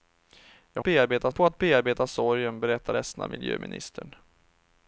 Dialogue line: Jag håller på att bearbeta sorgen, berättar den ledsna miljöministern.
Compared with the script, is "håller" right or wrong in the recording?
wrong